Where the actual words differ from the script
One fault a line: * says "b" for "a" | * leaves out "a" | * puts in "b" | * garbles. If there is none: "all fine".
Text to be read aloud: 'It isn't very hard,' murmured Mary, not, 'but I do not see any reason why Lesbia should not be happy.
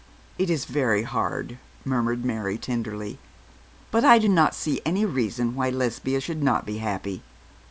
* says "is" for "isn't"
* says "tenderly" for "not"